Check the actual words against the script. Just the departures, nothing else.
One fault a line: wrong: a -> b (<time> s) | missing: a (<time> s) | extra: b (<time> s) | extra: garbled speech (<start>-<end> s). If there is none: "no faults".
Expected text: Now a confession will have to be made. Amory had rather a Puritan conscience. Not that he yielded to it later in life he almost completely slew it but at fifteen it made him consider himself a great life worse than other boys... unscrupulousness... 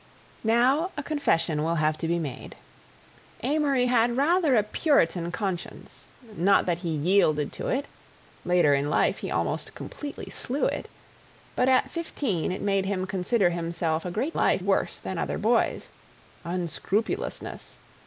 no faults